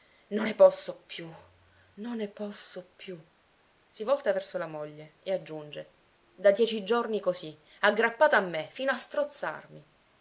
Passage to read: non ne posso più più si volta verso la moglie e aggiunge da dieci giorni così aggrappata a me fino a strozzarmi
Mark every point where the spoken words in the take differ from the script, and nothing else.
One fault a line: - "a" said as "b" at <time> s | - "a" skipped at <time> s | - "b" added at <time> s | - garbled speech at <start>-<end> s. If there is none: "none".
- "non ne posso" added at 1.9 s